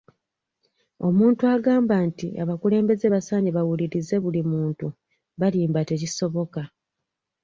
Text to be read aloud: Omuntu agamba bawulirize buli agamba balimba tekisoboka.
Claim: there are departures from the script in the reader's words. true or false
true